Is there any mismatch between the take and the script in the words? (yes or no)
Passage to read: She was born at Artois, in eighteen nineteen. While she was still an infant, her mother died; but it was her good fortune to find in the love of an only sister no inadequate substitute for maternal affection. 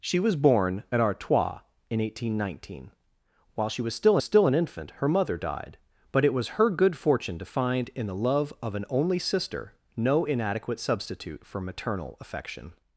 yes